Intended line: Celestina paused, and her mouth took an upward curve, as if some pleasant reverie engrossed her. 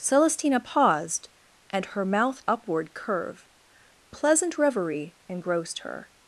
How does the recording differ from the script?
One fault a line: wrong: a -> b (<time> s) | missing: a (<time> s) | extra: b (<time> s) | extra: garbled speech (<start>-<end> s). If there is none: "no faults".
missing: took an (2.4 s)
missing: as if some (3.5 s)